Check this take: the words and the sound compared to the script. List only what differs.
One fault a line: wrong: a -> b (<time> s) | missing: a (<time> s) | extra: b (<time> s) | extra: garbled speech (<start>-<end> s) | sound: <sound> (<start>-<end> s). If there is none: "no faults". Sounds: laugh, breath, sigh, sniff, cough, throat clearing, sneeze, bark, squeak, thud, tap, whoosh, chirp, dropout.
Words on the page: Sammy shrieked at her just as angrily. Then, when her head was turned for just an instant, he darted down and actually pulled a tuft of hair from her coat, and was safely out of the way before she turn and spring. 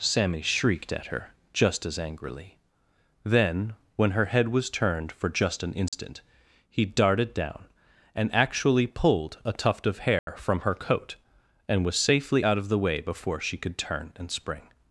sound: dropout (5.9-5.9 s)
sound: dropout (10.2-10.3 s)
extra: could (13.6 s)